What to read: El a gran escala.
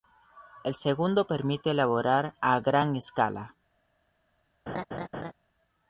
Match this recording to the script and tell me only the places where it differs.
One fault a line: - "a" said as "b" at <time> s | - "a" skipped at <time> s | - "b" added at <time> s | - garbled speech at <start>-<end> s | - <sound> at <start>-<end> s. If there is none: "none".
- "segundo permite elaborar" added at 0.7 s
- laugh at 4.7-5.3 s